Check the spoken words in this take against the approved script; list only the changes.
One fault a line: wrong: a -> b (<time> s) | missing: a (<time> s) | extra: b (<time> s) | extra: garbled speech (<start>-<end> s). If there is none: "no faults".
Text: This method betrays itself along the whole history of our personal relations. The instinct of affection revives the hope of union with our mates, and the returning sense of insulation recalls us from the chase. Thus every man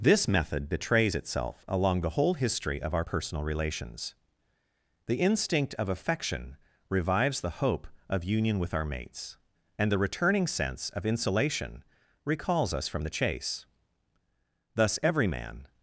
no faults